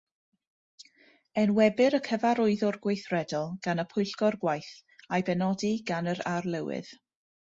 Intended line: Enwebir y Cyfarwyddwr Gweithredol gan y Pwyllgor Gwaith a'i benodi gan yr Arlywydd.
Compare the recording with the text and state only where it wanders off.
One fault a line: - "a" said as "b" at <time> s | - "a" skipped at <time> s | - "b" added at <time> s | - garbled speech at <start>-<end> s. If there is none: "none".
none